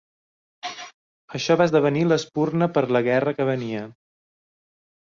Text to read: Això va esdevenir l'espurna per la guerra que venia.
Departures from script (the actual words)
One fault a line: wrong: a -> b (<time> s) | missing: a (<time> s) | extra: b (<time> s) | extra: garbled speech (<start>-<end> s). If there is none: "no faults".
no faults